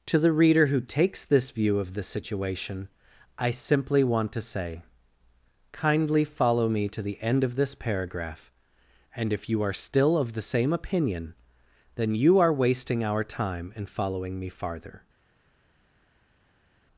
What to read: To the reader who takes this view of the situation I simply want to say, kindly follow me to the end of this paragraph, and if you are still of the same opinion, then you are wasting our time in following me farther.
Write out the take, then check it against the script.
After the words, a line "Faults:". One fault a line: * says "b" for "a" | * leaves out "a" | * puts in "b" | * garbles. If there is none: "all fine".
To the reader who takes this view of the situation I simply want to say, kindly follow me to the end of this paragraph, and if you are still of the same opinion, then you are wasting our time in following me farther.
Faults:
all fine